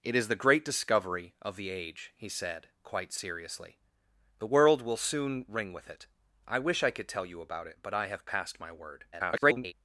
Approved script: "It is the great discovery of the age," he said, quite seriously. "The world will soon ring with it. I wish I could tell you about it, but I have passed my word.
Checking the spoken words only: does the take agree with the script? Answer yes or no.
no